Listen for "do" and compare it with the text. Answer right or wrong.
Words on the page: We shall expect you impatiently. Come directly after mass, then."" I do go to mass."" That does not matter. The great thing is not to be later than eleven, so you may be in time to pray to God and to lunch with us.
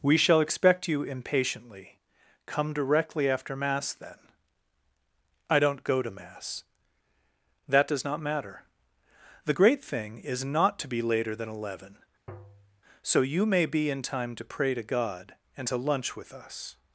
wrong